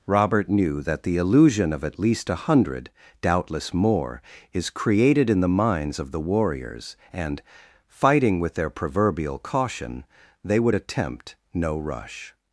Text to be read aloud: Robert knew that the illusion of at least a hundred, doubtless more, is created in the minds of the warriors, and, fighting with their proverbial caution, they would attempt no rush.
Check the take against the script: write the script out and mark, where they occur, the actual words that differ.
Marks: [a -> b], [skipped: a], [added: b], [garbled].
Robert knew that the illusion of at least a hundred, doubtless more, is created in the minds of the warriors, and, fighting with their proverbial caution, they would attempt no rush.